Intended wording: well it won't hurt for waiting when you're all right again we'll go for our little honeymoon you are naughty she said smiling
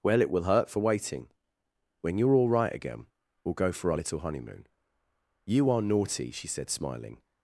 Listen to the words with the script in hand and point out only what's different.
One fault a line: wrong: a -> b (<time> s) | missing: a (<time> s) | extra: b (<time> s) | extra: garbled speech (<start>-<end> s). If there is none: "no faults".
wrong: won't -> will (0.3 s)